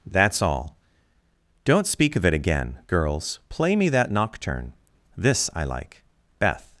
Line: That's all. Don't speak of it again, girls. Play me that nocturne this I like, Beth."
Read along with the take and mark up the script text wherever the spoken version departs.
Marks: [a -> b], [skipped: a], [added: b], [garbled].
That's all. Don't speak of it again, girls. Play me that nocturne this I like, Beth."